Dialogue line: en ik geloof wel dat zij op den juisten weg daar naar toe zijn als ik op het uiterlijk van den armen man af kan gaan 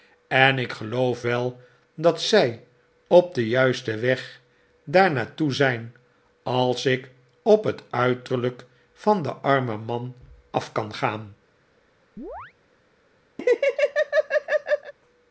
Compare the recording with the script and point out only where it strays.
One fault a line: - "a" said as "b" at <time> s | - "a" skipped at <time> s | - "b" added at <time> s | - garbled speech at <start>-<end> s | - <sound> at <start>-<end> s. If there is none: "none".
- chirp at 12.2-12.5 s
- laugh at 13.4-14.9 s